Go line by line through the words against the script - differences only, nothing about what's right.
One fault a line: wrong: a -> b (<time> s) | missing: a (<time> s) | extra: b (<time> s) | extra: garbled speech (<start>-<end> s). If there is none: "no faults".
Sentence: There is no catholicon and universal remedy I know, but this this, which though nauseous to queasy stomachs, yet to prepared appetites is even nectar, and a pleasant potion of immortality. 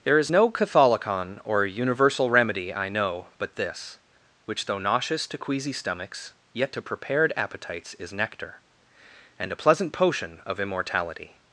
wrong: and -> or (1.4 s)
missing: this (4.0 s)
missing: even (8.1 s)